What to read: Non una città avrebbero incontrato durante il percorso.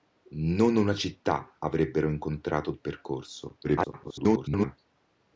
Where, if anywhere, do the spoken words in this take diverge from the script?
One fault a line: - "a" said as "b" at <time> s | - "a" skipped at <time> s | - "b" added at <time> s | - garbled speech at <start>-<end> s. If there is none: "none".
- "durante" skipped at 2.7 s
- garbled speech at 3.6-4.8 s